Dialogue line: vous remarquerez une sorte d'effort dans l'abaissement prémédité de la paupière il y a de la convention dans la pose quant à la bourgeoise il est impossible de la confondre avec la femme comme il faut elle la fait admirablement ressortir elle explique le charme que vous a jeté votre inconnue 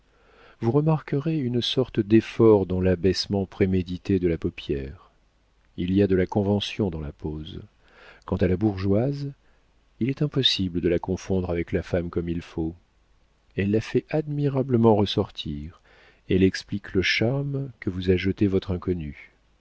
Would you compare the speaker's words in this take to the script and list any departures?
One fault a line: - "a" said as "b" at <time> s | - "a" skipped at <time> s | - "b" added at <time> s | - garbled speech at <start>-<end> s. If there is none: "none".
none